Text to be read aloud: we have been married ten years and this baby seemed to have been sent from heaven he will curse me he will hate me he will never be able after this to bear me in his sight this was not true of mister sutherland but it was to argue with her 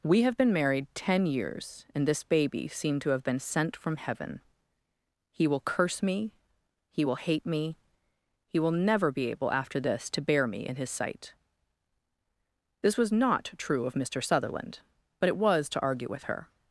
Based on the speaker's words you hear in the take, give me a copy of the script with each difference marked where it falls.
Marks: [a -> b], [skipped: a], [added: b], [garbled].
we have been married ten years and this baby seemed to have been sent from heaven he will curse me he will hate me he will never be able after this to bear me in his sight this was not true of mister sutherland but it was to argue with her